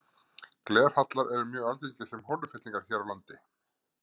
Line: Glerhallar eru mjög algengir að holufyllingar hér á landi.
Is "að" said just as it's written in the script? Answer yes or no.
no